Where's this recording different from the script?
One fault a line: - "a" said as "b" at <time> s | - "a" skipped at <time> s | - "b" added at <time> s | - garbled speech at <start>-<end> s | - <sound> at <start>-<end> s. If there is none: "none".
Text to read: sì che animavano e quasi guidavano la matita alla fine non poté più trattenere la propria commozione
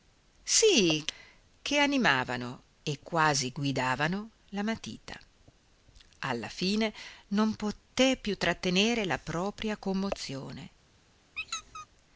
- squeak at 11.4-11.9 s